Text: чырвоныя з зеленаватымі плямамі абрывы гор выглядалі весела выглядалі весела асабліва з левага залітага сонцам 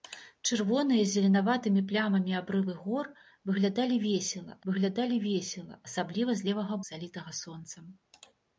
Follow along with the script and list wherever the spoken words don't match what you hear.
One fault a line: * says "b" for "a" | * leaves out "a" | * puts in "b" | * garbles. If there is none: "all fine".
all fine